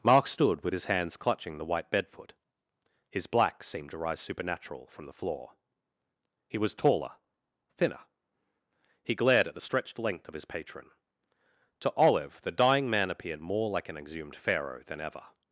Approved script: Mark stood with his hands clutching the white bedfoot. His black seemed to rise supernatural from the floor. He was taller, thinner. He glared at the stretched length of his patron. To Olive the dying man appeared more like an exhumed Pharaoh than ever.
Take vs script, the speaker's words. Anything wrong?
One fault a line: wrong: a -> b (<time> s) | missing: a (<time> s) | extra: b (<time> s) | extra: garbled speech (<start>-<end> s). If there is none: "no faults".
no faults